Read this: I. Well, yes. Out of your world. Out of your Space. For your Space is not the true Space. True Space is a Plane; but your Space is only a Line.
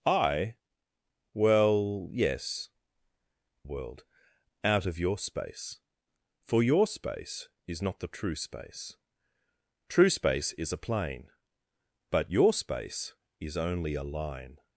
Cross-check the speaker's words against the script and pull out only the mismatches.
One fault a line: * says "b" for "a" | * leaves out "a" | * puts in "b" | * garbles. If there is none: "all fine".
* leaves out "Out of your"